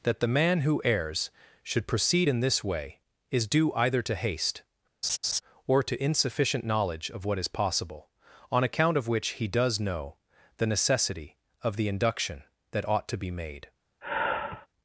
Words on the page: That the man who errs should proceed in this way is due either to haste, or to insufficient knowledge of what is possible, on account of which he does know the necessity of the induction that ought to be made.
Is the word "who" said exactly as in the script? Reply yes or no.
yes